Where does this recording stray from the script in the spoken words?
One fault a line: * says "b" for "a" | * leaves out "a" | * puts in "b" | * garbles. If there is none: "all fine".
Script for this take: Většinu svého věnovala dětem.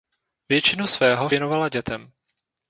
all fine